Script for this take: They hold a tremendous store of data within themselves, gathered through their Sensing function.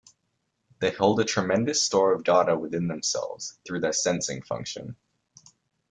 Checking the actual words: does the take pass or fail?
fail